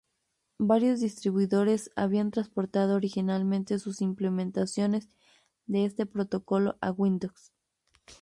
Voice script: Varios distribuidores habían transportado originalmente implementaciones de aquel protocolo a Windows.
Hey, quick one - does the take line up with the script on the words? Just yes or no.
no